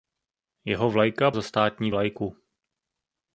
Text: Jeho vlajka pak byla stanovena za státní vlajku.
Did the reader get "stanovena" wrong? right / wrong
wrong